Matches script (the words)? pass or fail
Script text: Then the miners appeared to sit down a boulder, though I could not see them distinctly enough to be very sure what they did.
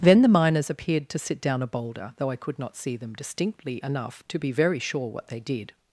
pass